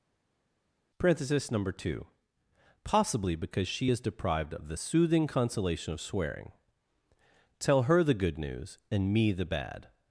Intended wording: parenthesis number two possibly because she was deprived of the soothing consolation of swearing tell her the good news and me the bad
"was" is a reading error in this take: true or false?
true